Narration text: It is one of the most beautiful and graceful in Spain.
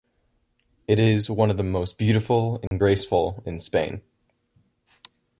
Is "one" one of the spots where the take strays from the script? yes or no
no